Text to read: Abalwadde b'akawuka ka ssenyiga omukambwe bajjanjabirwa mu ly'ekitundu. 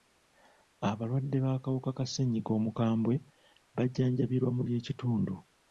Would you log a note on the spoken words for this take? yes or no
no